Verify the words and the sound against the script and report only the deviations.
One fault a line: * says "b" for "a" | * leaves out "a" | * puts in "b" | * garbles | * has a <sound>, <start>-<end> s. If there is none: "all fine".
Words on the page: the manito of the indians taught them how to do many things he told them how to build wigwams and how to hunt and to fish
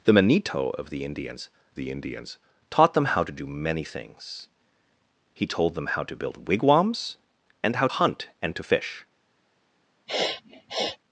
* puts in "the indians"
* leaves out "to"
* has a sniff, 10.1-11.0 s